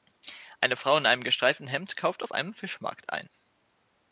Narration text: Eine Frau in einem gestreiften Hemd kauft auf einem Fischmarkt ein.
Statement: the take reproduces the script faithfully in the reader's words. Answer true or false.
true